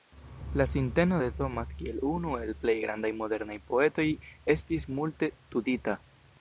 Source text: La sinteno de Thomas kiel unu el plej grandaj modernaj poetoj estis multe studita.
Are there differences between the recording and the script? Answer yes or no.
no